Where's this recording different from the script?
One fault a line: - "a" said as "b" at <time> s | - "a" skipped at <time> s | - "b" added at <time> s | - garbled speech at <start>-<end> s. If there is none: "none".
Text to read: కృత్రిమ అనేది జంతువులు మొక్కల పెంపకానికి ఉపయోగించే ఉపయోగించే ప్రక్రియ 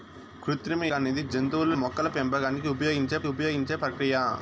none